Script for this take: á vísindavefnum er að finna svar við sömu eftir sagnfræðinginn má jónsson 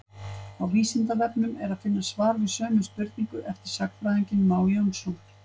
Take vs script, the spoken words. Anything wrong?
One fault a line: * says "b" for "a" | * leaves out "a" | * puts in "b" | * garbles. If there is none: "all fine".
* puts in "spurningu"